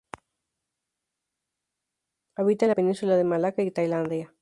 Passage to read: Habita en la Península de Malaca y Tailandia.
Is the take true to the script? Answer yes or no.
yes